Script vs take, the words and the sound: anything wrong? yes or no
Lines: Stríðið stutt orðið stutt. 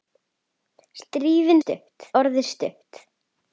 no